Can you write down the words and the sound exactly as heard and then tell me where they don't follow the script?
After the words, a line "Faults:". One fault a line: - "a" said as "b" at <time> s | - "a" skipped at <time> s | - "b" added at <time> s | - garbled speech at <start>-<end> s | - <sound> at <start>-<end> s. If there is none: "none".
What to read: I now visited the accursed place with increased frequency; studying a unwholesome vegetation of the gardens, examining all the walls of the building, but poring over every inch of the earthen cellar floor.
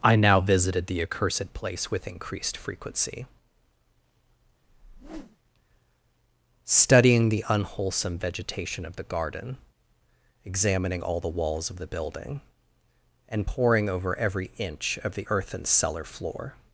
I now visited the accursed place with increased frequency; studying the unwholesome vegetation of the garden, examining all the walls of the building, and poring over every inch of the earthen cellar floor.
Faults:
- whoosh at 4.6-5.4 s
- "a" said as "the" at 7.3 s
- "gardens" said as "garden" at 9.0 s
- "but" said as "and" at 13.3 s